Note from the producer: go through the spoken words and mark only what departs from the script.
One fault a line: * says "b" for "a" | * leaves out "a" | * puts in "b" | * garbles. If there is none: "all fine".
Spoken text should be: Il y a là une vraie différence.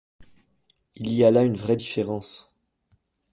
all fine